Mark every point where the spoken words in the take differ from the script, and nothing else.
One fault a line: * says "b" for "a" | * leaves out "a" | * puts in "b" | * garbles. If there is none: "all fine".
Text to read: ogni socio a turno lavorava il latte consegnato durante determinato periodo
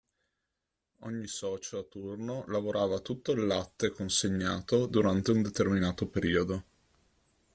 * puts in "tutto"
* puts in "un"